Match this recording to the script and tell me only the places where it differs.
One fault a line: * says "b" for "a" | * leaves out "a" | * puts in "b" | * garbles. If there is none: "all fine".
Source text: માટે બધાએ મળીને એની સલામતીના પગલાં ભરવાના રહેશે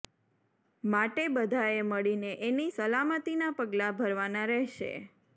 all fine